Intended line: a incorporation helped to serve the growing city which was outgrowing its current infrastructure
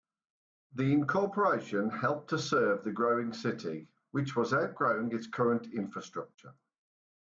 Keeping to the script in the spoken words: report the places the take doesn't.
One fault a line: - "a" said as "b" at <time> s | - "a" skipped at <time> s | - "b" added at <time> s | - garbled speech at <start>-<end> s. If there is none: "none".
- "a" said as "the" at 0.7 s